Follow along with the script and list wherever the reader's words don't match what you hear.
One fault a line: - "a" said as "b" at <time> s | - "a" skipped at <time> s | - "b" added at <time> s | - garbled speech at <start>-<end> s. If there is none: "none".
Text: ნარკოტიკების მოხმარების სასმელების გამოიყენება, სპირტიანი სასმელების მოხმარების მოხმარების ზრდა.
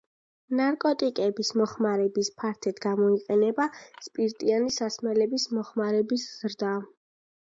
- "სასმელების" said as "ფართედ" at 2.4 s
- "მოხმარების" skipped at 6.3 s